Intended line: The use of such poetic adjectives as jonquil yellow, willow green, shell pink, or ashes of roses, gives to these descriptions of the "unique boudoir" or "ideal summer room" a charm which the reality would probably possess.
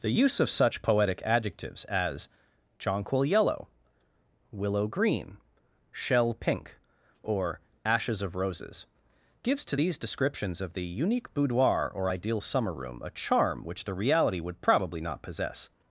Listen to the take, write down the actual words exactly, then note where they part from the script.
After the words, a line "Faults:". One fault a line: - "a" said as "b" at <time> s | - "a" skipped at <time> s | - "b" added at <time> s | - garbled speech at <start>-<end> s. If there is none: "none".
The use of such poetic adjectives as jonquil yellow, willow green, shell pink, or ashes of roses, gives to these descriptions of the "unique boudoir" or "ideal summer room" a charm which the reality would probably not possess.
Faults:
- "not" added at 15.0 s